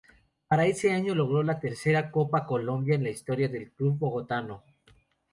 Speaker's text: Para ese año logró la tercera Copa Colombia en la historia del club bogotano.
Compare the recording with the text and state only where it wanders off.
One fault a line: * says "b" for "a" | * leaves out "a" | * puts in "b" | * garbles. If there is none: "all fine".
all fine